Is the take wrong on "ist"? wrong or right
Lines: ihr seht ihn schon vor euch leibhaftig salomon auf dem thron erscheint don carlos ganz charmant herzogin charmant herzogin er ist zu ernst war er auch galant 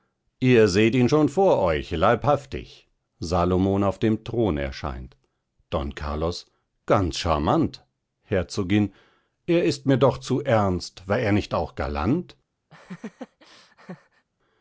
wrong